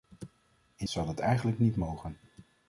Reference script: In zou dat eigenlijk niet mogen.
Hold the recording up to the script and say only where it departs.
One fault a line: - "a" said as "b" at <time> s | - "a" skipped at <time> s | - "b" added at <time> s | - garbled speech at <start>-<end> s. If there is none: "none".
none